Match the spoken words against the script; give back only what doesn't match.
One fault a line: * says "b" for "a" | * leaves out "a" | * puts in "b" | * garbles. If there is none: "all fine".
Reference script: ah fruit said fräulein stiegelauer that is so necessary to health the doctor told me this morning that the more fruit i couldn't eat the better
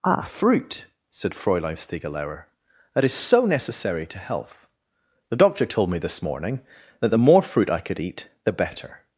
* says "could" for "couldn't"